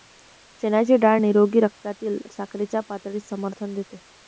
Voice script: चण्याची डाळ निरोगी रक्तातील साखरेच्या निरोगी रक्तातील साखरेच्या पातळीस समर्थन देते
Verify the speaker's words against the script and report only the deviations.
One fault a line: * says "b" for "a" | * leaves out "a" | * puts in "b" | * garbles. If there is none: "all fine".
* leaves out "निरोगी रक्तातील साखरेच्या"